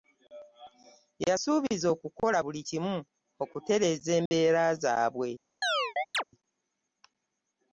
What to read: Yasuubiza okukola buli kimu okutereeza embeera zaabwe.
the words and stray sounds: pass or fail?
fail